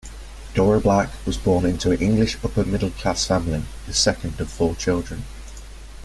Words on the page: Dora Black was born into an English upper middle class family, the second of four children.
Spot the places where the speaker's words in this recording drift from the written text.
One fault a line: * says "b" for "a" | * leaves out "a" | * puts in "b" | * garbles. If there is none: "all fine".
all fine